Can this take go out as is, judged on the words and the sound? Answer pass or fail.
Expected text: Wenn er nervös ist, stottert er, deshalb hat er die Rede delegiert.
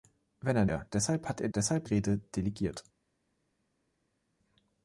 fail